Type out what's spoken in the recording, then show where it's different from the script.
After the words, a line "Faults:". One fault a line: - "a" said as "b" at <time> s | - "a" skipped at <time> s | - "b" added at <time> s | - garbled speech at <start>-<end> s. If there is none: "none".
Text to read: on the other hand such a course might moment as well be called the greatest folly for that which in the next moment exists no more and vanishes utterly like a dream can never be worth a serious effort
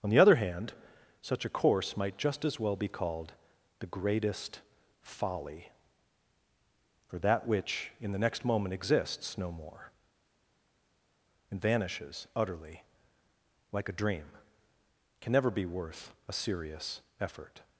on the other hand such a course might just as well be called the greatest folly for that which in the next moment exists no more and vanishes utterly like a dream can never be worth a serious effort
Faults:
- "moment" said as "just" at 2.2 s